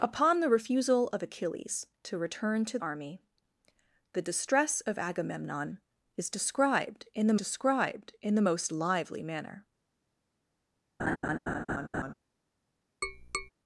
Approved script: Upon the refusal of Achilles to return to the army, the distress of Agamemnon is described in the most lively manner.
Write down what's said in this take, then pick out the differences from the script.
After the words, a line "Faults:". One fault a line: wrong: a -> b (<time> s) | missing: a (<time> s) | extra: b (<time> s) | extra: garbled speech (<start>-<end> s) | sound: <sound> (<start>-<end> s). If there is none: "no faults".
Upon the refusal of Achilles to return to army, the distress of Agamemnon is described in the described in the most lively manner.
Faults:
missing: the (2.8 s)
extra: described in the (7.3 s)
sound: laugh (11.0-12.1 s)
sound: tap (13.0-13.5 s)